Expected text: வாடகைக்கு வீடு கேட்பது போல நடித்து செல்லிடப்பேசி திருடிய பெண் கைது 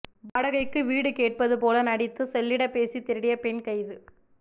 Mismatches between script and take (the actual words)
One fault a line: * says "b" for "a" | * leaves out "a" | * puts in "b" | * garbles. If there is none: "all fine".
all fine